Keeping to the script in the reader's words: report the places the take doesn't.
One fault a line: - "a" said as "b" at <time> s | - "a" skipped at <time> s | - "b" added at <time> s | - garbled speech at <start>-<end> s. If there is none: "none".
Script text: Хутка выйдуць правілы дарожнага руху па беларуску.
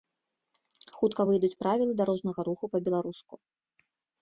none